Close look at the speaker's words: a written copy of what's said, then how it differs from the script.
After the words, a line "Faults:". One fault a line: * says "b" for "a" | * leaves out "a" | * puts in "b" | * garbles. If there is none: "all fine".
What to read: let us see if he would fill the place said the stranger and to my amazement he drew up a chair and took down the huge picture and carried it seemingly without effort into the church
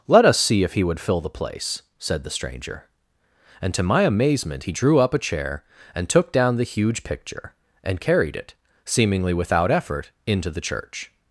let us see if he would fill the place said the stranger and to my amazement he drew up a chair and took down the huge picture and carried it seemingly without effort into the church
Faults:
all fine